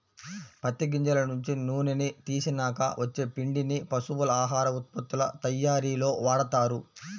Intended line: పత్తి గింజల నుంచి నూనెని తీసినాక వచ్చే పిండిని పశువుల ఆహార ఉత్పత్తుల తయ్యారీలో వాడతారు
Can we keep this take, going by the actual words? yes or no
yes